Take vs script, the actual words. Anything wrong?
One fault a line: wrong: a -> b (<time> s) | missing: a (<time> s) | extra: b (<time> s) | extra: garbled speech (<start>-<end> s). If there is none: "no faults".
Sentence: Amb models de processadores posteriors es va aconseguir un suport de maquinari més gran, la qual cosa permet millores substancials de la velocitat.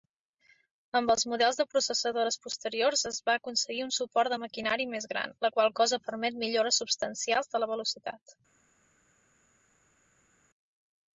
extra: els (1.1 s)